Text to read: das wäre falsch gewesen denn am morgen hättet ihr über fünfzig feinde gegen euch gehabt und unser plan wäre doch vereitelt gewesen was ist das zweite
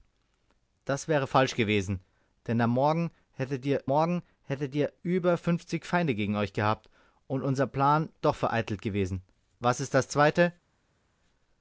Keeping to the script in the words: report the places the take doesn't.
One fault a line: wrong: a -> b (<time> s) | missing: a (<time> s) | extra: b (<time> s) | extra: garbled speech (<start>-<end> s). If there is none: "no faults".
extra: morgen hättet ihr (3.8 s)
missing: wäre (8.1 s)